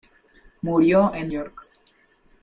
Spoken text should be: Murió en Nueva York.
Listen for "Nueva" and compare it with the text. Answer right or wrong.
wrong